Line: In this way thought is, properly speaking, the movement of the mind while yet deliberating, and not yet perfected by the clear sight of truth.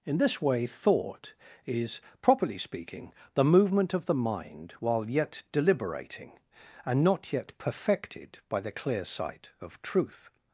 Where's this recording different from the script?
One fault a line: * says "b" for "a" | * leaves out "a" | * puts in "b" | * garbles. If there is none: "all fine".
all fine